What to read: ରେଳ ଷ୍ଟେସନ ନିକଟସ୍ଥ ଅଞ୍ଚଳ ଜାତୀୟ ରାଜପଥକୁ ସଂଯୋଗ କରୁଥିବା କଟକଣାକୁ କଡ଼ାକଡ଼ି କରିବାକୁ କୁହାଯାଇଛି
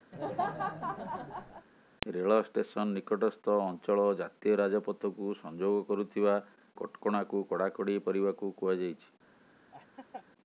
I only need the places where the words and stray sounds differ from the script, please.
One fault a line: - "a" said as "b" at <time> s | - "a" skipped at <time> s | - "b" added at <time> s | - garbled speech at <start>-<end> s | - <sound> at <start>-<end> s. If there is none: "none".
- laugh at 0.1-1.7 s
- laugh at 9.7-10.3 s